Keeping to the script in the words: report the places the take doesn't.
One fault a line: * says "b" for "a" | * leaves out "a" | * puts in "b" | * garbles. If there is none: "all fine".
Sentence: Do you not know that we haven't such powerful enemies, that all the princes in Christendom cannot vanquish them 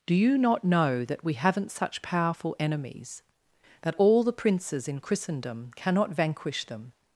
all fine